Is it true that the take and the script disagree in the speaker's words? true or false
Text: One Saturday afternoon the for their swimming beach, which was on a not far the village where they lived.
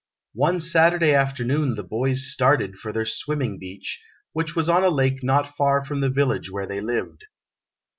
true